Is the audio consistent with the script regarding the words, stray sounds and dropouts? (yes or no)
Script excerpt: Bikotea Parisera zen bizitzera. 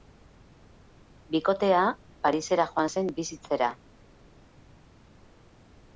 no